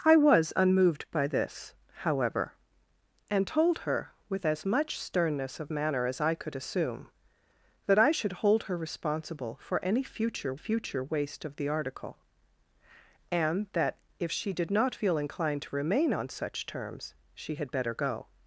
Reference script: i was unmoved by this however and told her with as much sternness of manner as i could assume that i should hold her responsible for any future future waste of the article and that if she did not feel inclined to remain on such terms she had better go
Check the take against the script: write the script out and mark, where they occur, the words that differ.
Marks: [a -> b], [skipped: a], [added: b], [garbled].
i was unmoved by this however and told her with as much sternness of manner as i could assume that i should hold her responsible for any future future waste of the article and that if she did not feel inclined to remain on such terms she had better go